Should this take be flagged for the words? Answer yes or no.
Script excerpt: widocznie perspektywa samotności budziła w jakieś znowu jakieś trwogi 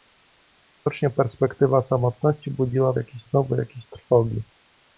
no